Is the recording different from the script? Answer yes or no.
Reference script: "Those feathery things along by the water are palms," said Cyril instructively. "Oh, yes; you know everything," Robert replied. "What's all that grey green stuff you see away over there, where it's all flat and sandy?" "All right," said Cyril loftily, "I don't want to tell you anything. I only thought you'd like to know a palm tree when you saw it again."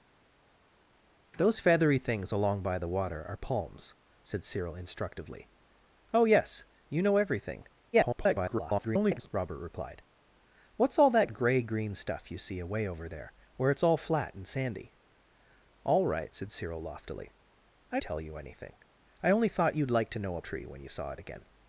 yes